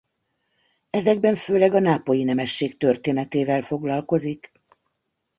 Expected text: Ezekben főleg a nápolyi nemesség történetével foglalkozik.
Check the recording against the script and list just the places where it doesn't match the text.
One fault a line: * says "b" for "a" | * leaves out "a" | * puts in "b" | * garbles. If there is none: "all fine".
all fine